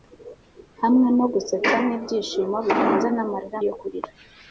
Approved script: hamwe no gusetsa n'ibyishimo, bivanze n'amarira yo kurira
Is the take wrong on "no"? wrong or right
right